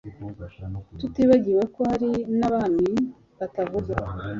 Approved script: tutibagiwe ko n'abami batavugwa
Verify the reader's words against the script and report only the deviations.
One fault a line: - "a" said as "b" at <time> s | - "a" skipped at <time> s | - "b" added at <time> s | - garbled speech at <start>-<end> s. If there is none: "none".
- "hari" added at 1.9 s